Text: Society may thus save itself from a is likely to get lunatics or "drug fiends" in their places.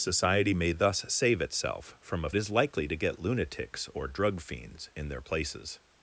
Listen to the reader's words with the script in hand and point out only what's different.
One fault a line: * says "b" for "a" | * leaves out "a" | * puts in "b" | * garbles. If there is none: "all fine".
all fine